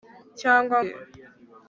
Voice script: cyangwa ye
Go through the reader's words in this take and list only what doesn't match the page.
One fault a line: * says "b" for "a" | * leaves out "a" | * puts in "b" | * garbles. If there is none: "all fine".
all fine